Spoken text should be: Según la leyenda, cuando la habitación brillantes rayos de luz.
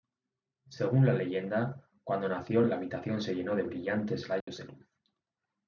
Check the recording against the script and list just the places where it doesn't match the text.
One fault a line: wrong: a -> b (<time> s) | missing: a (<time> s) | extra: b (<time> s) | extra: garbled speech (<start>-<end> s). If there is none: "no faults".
extra: nació (2.3 s)
extra: se llenó de (3.2 s)